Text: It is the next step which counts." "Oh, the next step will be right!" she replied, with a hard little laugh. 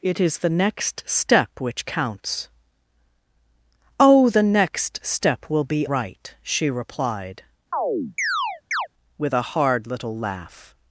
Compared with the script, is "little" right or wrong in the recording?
right